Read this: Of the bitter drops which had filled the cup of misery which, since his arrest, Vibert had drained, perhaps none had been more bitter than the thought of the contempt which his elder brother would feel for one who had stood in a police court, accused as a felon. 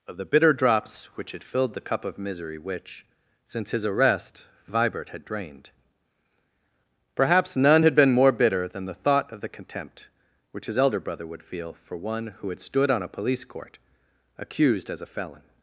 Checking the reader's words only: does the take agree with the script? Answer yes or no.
no